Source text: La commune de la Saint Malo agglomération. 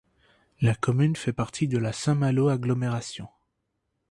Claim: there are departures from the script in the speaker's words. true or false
true